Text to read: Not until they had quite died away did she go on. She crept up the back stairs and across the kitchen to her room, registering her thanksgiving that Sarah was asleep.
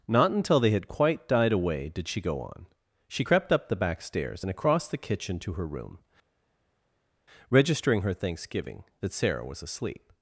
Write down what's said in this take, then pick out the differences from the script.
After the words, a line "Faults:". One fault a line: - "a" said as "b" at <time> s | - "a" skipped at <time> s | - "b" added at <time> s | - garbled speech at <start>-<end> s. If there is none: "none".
Not until they had quite died away did she go on. She crept up the back stairs and across the kitchen to her room, registering her thanksgiving that Sarah was asleep.
Faults:
none